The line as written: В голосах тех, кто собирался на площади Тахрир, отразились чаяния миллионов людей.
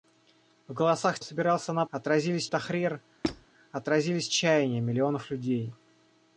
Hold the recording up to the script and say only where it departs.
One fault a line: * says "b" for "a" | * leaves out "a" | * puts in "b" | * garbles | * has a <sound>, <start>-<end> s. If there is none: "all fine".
* leaves out "тех кто"
* says "отразились" for "площади"
* has a squeak, 3.2-3.5 s